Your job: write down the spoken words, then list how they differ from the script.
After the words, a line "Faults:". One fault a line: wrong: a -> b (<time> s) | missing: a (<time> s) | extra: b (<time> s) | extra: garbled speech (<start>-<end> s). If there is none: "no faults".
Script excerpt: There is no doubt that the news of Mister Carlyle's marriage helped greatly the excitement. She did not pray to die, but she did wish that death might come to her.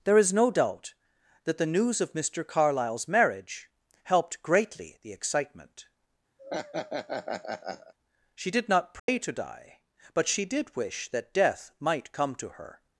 There is no doubt that the news of Mister Carlyle's marriage helped greatly the excitement. She did not pray to die, but she did wish that death might come to her.
Faults:
no faults